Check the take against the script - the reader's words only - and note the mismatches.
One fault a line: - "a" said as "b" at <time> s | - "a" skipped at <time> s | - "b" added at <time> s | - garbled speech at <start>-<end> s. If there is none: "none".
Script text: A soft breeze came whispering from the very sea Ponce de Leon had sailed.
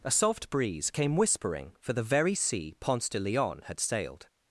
- "from" said as "for" at 1.8 s